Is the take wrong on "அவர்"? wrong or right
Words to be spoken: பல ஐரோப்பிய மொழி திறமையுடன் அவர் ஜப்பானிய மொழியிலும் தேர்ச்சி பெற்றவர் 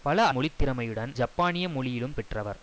wrong